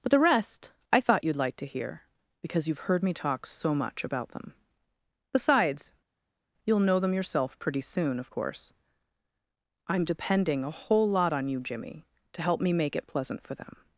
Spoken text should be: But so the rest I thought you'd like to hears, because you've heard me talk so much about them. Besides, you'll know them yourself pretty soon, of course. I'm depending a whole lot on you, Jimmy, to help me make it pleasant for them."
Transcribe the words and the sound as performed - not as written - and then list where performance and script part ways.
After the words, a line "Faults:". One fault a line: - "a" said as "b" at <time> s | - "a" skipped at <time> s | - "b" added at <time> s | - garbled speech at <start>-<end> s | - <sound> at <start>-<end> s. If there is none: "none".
But the rest I thought you'd like to hear, because you've heard me talk so much about them. Besides, you'll know them yourself pretty soon, of course. I'm depending a whole lot on you, Jimmy, to help me make it pleasant for them."
Faults:
- "so" skipped at 0.1 s
- "hears" said as "hear" at 1.6 s